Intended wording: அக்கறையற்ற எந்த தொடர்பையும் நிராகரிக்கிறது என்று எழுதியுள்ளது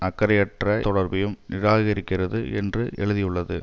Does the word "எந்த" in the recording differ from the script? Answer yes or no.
yes